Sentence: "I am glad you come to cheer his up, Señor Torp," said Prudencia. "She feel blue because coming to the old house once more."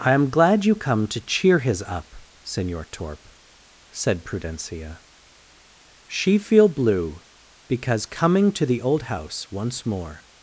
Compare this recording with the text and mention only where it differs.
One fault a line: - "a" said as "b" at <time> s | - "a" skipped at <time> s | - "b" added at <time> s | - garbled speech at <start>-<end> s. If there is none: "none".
none